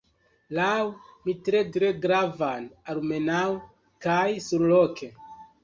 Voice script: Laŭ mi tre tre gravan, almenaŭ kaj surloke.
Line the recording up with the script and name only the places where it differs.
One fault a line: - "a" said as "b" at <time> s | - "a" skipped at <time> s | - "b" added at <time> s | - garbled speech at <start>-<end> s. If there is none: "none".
none